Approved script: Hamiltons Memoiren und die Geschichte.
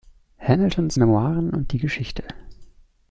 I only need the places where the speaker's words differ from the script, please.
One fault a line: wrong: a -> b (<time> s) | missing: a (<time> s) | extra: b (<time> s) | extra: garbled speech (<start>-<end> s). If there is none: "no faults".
no faults